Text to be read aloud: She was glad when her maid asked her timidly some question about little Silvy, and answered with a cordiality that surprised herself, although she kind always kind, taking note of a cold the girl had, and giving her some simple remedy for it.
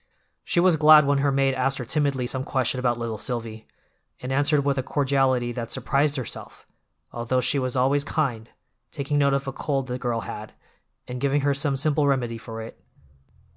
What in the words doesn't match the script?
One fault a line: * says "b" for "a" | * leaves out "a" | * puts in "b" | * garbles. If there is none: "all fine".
* says "was" for "kind"